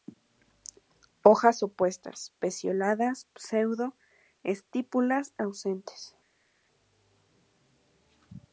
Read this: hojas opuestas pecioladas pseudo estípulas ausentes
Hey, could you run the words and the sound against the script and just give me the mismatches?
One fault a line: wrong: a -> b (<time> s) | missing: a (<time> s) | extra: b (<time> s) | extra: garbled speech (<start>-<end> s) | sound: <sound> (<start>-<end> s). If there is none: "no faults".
no faults